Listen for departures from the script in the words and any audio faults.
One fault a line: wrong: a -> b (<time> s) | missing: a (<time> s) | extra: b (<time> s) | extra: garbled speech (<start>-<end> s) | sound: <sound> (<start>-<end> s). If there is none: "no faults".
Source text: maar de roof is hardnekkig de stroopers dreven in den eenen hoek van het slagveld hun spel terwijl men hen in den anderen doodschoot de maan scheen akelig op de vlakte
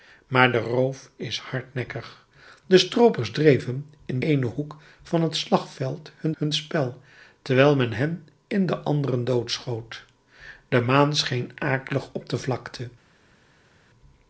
missing: den (4.2 s)
extra: hun (6.3 s)